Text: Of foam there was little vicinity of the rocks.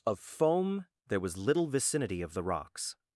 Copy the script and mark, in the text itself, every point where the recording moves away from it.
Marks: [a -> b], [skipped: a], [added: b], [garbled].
Of foam there was little vicinity of the rocks.